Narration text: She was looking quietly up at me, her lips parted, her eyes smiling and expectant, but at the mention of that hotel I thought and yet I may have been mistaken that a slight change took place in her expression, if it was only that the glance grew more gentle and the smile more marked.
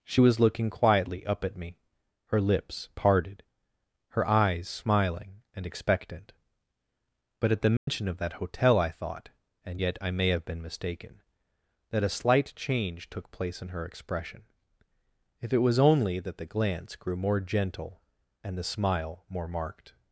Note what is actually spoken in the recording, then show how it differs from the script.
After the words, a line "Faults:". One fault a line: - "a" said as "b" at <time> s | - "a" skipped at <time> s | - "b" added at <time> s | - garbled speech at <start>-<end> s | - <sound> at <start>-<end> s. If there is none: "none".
She was looking quietly up at me, her lips parted, her eyes smiling and expectant, but at the mention of that hotel I thought and yet I may have been mistaken that a slight change took place in her expression, if it was only that the glance grew more gentle and the smile more marked.
Faults:
- dropout at 7.8-7.9 s